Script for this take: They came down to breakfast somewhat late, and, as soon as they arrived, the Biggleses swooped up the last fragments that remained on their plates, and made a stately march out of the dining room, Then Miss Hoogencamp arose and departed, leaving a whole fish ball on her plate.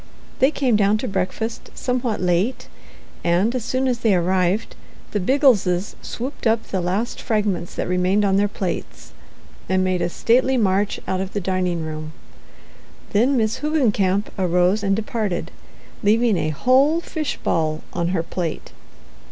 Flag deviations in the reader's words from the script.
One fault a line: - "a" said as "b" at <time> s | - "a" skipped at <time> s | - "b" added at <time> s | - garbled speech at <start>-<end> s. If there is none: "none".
none